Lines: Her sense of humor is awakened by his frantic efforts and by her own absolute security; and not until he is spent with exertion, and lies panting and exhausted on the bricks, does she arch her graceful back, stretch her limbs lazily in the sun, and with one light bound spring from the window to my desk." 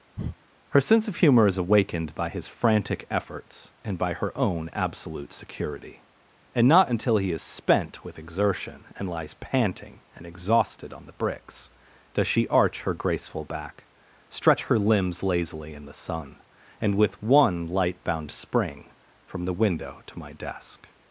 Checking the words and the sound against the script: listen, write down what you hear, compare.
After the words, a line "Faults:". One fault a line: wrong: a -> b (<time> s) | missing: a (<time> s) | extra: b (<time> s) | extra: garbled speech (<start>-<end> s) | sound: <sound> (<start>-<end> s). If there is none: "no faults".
Her sense of humor is awakened by his frantic efforts and by her own absolute security; and not until he is spent with exertion, and lies panting and exhausted on the bricks, does she arch her graceful back, stretch her limbs lazily in the sun, and with one light bound spring from the window to my desk."
Faults:
sound: breath (0.2-0.4 s)